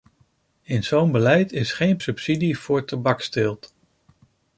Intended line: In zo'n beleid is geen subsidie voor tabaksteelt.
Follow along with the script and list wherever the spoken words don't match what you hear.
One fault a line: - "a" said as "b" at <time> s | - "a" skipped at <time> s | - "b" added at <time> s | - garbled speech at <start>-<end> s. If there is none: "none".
none